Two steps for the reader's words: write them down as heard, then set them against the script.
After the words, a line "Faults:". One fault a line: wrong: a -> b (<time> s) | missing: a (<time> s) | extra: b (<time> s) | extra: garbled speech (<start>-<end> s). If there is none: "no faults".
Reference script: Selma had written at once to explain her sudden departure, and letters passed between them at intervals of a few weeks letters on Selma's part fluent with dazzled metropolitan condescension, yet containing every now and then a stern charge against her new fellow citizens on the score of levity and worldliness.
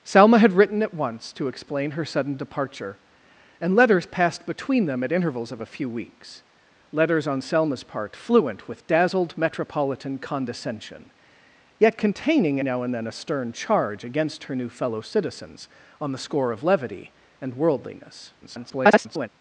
Selma had written at once to explain her sudden departure, and letters passed between them at intervals of a few weeks letters on Selma's part fluent with dazzled metropolitan condescension, yet containing now and then a stern charge against her new fellow citizens on the score of levity and worldliness. [garbled]
Faults:
missing: every (12.6 s)
extra: garbled speech (18.4-19.3 s)